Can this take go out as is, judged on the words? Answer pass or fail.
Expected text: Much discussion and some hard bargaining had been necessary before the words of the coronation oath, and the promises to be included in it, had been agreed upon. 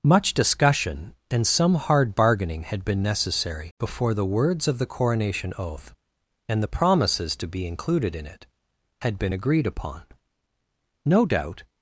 fail